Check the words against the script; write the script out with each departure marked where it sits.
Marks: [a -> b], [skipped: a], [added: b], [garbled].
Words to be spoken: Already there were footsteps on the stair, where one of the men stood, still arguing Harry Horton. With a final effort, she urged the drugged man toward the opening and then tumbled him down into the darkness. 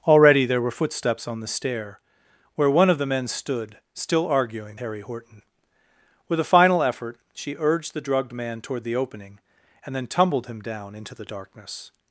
Already there were footsteps on the stair, where one of the men stood, still arguing Harry Horton. With a final effort, she urged the drugged man toward the opening and then tumbled him down into the darkness.